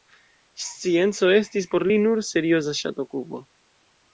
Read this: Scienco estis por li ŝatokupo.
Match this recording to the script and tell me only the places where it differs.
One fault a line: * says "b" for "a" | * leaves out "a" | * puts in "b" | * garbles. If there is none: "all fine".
* puts in "nur serioza"